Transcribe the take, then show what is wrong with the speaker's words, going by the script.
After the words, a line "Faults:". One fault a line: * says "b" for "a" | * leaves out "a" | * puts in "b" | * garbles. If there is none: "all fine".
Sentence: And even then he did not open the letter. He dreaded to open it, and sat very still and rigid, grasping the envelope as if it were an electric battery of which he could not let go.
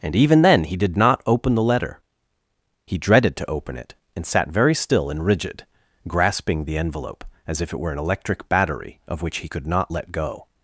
And even then he did not open the letter. He dreaded to open it, and sat very still and rigid, grasping the envelope as if it were an electric battery of which he could not let go.
Faults:
all fine